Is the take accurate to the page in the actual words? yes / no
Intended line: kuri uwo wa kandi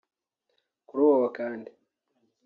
yes